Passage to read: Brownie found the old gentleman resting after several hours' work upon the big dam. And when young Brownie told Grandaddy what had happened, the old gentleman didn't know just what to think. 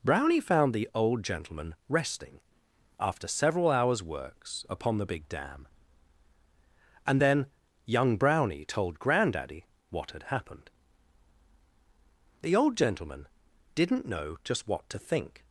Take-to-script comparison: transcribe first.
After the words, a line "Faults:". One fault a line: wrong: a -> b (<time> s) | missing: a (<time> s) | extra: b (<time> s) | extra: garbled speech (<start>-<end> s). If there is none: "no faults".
Brownie found the old gentleman resting after several hours' works upon the big dam. And then young Brownie told Grandaddy what had happened, the old gentleman didn't know just what to think.
Faults:
wrong: work -> works (4.0 s)
wrong: when -> then (7.2 s)